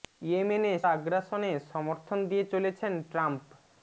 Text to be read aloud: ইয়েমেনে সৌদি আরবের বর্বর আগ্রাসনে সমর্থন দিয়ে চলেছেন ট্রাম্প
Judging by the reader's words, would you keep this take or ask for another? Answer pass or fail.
fail